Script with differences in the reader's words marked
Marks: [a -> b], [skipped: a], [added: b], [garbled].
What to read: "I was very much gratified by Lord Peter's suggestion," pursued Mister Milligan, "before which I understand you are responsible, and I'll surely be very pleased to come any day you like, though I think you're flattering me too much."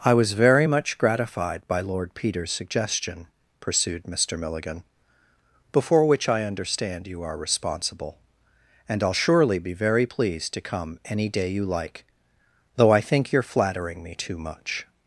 "I was very much gratified by Lord Peter's suggestion," pursued Mister Milligan, "before which I understand you are responsible, and I'll surely be very pleased to come any day you like, though I think you're flattering me too much."